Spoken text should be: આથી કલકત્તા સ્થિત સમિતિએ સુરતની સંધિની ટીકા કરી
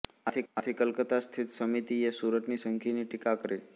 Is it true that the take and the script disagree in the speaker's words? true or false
true